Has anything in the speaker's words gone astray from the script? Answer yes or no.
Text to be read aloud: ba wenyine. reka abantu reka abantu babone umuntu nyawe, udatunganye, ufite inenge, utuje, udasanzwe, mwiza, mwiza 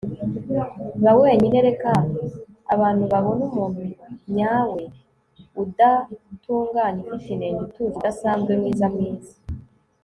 yes